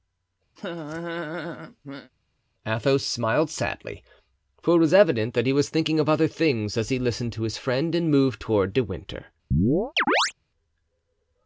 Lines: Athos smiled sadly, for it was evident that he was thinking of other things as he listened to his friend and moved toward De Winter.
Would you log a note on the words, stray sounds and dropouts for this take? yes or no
yes